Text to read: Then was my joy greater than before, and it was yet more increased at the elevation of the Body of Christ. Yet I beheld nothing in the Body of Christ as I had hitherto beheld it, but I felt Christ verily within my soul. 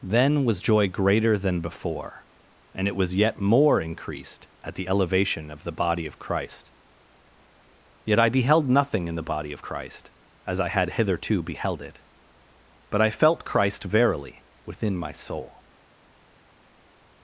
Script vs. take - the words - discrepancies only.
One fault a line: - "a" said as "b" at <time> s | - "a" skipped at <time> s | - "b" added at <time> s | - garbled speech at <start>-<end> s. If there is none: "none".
- "my" skipped at 0.6 s